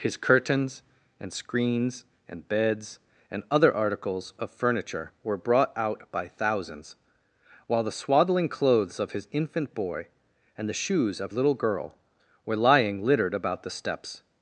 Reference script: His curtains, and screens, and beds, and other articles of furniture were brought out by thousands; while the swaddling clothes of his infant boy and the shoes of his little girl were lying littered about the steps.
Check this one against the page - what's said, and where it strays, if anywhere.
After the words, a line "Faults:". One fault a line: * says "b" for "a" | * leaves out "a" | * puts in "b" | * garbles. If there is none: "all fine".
His curtains, and screens, and beds, and other articles of furniture were brought out by thousands; while the swaddling clothes of his infant boy and the shoes of little girl were lying littered about the steps.
Faults:
* leaves out "his"